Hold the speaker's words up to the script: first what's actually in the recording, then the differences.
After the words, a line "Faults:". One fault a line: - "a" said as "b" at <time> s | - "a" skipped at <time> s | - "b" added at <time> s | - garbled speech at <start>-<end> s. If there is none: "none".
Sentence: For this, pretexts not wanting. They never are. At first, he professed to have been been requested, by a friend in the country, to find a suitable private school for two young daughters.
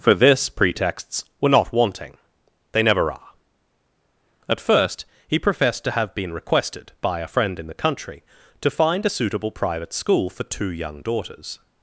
For this, pretexts were not wanting. They never are. At first, he professed to have been requested, by a friend in the country, to find a suitable private school for two young daughters.
Faults:
- "were" added at 1.4 s
- "been" skipped at 6.3 s